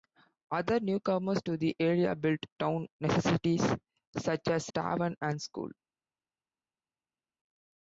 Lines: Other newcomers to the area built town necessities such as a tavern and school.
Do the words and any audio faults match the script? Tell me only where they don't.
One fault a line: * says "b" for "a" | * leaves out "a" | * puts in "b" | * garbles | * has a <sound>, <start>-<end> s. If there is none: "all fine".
* leaves out "a"